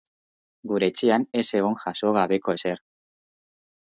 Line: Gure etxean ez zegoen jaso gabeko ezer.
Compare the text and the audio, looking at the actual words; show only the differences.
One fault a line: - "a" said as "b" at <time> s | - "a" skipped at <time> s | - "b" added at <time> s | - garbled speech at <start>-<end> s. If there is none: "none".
none